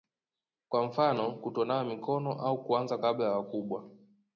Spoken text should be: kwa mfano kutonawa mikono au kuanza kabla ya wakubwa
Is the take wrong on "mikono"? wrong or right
right